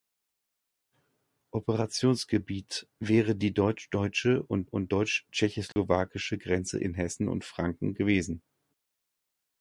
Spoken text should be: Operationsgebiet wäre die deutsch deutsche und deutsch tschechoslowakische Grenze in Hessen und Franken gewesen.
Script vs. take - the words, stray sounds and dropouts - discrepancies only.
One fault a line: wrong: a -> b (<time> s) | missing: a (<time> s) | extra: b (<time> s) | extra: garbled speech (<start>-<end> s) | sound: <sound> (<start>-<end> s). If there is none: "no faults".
extra: und (4.6 s)
sound: dropout (5.7-5.8 s)